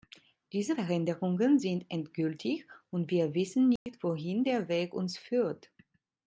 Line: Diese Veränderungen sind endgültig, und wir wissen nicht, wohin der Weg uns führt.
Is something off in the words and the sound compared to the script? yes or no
yes